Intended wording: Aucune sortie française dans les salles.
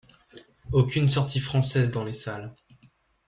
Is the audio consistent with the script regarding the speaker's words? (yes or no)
yes